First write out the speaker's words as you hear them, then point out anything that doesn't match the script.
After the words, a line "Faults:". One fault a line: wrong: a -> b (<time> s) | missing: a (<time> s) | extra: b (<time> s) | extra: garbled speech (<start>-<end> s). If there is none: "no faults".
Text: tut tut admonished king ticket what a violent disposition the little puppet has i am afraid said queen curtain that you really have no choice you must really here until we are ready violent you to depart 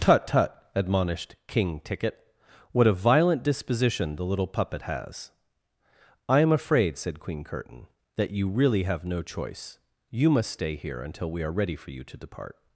tut tut admonished king ticket what a violent disposition the little puppet has i am afraid said queen curtain that you really have no choice you must stay here until we are ready for you to depart
Faults:
wrong: really -> stay (10.5 s)
wrong: violent -> for (11.8 s)